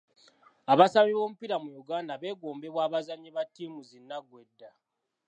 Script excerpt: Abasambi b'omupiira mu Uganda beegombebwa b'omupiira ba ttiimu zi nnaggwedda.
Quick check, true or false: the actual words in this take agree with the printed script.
false